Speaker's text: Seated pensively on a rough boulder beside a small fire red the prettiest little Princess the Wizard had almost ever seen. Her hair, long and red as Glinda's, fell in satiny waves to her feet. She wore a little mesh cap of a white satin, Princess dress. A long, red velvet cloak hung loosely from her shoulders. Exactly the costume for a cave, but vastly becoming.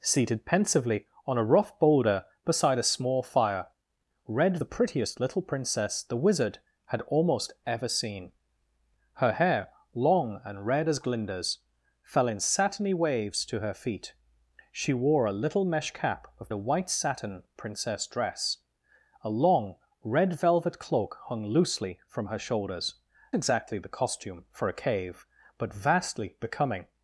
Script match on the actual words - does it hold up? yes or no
yes